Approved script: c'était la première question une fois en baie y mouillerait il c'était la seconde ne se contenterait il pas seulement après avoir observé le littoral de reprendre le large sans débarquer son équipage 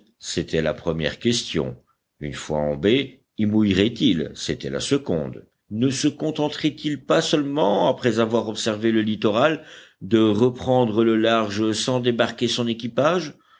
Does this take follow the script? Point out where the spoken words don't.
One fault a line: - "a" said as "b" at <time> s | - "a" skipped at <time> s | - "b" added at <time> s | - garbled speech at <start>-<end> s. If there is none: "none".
none